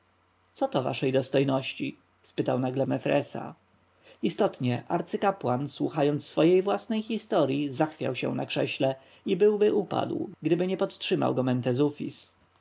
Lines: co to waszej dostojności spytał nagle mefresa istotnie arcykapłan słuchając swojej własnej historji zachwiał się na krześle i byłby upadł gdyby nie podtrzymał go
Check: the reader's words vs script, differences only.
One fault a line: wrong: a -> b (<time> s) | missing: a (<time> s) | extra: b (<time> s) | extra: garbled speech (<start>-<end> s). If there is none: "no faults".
no faults